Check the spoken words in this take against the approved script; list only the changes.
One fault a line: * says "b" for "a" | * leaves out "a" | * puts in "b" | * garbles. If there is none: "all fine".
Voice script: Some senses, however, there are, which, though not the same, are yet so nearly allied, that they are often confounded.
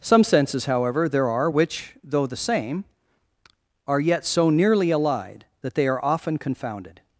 * leaves out "not"